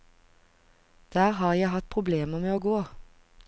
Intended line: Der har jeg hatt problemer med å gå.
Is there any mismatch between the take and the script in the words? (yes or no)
no